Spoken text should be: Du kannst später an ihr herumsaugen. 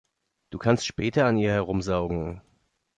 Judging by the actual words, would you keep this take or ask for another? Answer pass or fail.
pass